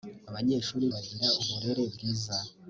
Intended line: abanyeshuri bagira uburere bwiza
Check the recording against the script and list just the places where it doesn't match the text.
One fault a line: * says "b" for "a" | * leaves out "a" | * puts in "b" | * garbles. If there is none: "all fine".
all fine